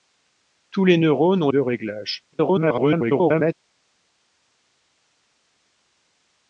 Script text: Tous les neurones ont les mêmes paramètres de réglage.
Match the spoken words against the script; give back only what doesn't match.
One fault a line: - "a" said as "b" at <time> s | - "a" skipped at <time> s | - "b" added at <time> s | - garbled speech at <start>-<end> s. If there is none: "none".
- "les mêmes paramètres" skipped at 1.5 s
- garbled speech at 2.3-3.5 s